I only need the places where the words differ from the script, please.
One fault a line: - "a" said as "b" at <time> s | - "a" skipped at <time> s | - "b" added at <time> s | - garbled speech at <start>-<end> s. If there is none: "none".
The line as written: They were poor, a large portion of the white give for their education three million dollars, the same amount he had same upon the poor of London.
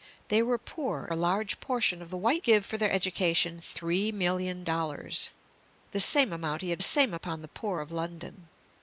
none